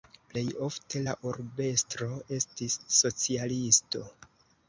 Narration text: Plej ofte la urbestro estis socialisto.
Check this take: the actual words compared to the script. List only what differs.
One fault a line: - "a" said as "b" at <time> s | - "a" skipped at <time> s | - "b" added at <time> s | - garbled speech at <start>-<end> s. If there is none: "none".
none